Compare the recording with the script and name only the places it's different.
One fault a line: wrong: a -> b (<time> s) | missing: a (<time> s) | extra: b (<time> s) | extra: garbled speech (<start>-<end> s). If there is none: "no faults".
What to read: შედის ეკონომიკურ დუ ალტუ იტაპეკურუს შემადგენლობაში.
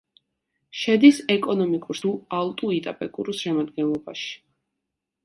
no faults